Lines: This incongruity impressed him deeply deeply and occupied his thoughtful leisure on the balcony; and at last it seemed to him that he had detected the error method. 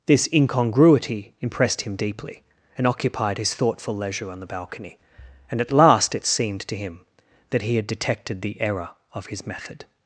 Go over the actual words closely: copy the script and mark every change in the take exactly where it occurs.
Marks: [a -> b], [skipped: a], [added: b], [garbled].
This incongruity impressed him deeply [skipped: deeply] and occupied his thoughtful leisure on the balcony; and at last it seemed to him that he had detected the error [added: of his] method.